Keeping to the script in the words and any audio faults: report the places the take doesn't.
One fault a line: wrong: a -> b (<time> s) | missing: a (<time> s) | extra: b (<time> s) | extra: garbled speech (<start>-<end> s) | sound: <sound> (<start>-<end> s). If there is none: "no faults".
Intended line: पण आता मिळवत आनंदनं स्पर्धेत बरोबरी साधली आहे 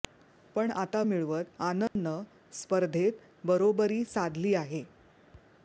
sound: dropout (1.9-2.0 s)